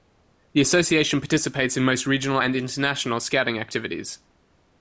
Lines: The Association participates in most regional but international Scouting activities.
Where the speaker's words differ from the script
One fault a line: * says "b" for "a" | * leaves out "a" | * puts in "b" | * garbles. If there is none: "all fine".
* says "and" for "but"